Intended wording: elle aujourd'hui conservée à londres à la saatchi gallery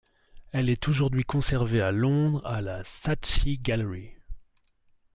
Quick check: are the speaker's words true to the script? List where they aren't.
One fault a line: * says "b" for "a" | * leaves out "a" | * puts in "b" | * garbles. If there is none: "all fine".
* puts in "est"